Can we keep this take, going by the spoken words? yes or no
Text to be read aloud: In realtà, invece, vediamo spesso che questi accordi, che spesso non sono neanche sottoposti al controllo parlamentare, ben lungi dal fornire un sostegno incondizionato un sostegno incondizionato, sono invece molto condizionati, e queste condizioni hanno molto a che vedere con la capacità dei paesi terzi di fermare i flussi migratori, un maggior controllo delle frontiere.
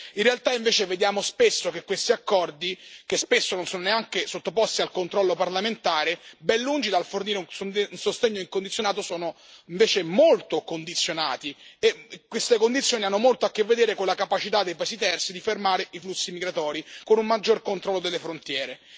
no